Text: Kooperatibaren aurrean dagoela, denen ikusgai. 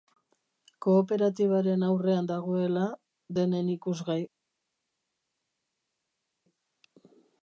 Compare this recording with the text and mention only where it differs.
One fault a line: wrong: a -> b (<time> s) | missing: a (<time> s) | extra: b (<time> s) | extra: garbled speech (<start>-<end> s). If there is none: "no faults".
no faults